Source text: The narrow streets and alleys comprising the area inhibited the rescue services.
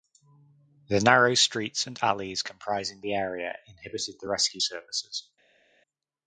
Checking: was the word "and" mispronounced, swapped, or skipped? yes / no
no